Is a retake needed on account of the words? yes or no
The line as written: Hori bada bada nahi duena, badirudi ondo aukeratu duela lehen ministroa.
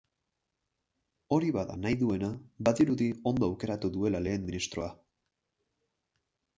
yes